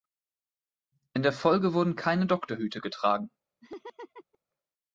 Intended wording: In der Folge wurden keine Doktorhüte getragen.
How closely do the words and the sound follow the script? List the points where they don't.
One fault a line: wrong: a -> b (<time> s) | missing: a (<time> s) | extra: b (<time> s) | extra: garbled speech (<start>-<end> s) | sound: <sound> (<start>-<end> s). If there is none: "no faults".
sound: laugh (3.6-4.4 s)